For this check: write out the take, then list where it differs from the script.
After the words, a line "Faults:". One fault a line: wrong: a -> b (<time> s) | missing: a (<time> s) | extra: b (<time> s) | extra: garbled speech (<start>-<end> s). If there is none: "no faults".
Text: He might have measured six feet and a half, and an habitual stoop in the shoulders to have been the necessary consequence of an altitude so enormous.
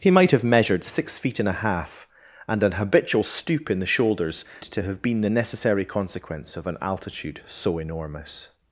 He might have measured six feet and a half, and an habitual stoop in the shoulders to have been the necessary consequence of an altitude so enormous.
Faults:
no faults